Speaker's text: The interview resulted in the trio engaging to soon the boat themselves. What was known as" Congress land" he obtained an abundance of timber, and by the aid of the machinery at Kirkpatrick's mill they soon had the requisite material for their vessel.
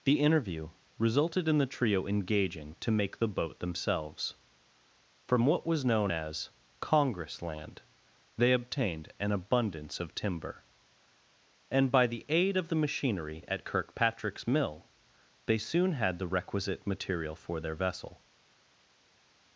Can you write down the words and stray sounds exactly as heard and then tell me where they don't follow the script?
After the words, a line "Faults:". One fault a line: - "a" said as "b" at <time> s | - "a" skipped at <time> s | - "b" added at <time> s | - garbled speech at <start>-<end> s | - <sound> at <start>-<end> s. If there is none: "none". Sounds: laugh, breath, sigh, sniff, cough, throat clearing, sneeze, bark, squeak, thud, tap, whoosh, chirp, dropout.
The interview resulted in the trio engaging to make the boat themselves. From what was known as" Congress land" they obtained an abundance of timber, and by the aid of the machinery at Kirkpatrick's mill they soon had the requisite material for their vessel.
Faults:
- "soon" said as "make" at 2.9 s
- "From" added at 5.3 s
- "he" said as "they" at 8.4 s